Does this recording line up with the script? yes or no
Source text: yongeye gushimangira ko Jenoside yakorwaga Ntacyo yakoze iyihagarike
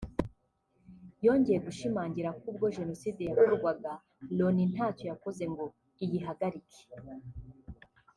no